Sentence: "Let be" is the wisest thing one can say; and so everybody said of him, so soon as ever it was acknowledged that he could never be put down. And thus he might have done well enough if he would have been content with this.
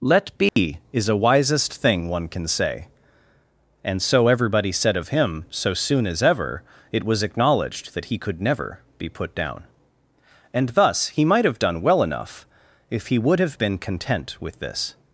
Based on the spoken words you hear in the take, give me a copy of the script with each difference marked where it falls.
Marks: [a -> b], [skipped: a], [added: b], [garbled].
"Let be" is [the -> a] wisest thing one can say; and so everybody said of him, so soon as ever it was acknowledged that he could never be put down. And thus he might have done well enough if he would have been content with this.